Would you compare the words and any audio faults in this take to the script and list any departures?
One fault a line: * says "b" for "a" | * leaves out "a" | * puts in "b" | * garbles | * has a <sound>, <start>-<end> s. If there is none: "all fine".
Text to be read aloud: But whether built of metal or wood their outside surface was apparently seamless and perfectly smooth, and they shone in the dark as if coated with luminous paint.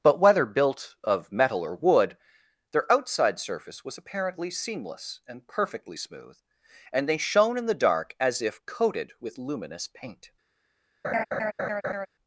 * has a laugh, 11.0-12.1 s